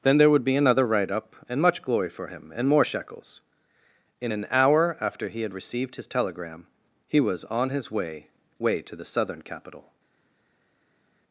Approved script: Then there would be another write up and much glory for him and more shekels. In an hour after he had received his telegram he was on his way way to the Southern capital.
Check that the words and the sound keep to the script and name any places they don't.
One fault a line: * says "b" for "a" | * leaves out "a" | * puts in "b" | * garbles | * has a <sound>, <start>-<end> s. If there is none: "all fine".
all fine